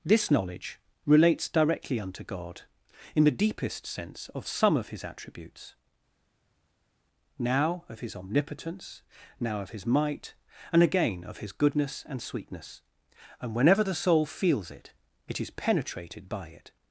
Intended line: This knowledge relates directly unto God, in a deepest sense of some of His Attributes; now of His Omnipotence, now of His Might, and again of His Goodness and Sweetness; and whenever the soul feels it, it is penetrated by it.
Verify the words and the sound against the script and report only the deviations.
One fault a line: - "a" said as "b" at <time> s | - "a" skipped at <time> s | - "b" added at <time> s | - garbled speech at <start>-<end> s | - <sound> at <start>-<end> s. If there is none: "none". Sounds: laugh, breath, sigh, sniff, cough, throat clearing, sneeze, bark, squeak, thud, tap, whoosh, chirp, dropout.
- "a" said as "the" at 3.2 s